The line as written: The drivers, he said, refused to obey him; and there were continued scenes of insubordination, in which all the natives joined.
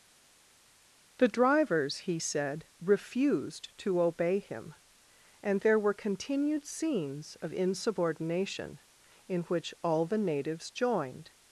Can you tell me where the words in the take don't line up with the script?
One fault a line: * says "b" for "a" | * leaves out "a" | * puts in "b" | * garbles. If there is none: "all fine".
all fine